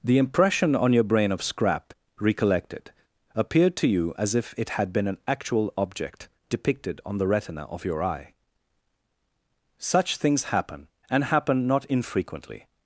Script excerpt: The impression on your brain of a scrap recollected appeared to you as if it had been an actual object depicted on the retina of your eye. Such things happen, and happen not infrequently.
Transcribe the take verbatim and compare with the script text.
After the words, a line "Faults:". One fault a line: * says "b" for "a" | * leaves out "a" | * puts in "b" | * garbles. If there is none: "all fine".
The impression on your brain of scrap recollected appeared to you as if it had been an actual object depicted on the retina of your eye. Such things happen, and happen not infrequently.
Faults:
* leaves out "a"